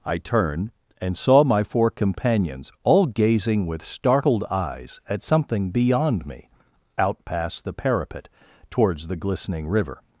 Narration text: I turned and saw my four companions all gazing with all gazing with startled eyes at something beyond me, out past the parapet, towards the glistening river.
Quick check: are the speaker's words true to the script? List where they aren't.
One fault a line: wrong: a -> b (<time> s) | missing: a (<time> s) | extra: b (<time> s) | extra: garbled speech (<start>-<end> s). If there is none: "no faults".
missing: all gazing with (3.9 s)